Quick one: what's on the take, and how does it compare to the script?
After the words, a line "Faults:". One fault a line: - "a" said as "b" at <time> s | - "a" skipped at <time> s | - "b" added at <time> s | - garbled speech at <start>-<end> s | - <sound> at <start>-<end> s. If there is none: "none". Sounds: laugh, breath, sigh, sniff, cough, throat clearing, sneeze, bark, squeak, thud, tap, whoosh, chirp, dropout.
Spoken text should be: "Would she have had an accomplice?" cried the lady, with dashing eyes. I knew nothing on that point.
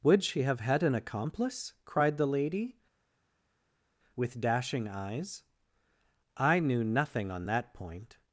"Would she have had an accomplice?" cried the lady, with dashing eyes. I knew nothing on that point.
Faults:
none